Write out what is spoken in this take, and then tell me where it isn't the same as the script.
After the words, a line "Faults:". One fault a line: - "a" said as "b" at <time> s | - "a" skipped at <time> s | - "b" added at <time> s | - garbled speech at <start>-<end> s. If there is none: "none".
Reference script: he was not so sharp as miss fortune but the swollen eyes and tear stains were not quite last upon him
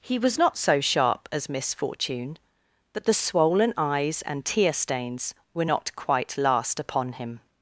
he was not so sharp as miss fortune but the swollen eyes and tear stains were not quite last upon him
Faults:
none